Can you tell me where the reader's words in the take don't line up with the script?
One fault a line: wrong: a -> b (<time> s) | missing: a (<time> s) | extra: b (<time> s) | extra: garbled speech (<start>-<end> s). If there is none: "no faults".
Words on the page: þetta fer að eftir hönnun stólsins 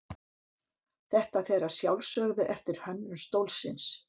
extra: sjálfsögðu (1.8 s)